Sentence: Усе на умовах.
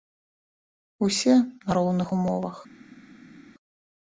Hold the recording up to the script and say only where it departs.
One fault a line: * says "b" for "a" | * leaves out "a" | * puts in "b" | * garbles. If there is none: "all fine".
* puts in "роўных"